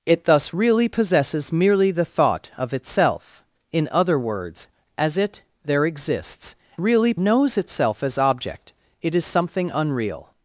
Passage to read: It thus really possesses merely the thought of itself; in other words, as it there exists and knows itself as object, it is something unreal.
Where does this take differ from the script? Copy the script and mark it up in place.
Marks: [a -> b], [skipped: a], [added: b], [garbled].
It thus really possesses merely the thought of itself; in other words, as it there exists [and -> really] knows itself as object, it is something unreal.